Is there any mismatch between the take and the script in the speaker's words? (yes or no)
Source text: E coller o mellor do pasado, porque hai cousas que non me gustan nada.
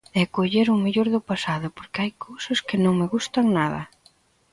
no